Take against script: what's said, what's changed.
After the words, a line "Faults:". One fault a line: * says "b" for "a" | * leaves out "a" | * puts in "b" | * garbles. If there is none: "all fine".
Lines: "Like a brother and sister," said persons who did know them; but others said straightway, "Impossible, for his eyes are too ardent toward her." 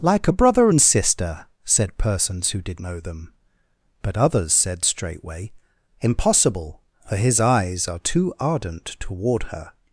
"Like a brother and sister," said persons who did know them; but others said straightway, "Impossible, for his eyes are too ardent toward her."
Faults:
all fine